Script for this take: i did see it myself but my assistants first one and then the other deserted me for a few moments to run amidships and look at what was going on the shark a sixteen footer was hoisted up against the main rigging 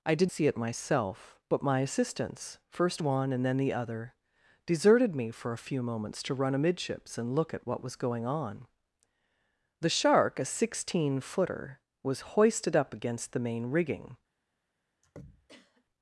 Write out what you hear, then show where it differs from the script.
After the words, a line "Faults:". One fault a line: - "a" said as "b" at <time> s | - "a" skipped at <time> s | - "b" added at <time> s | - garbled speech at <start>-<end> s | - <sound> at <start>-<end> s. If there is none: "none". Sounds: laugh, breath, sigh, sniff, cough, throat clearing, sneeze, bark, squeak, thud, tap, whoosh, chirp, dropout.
i did see it myself but my assistants first one and then the other deserted me for a few moments to run amidships and look at what was going on the shark a sixteen footer was hoisted up against the main rigging
Faults:
- throat clearing at 15.0-15.8 s